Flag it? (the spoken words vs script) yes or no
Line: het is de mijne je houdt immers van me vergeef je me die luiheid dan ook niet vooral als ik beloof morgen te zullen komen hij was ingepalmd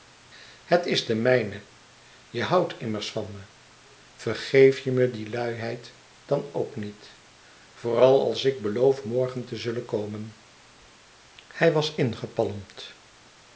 no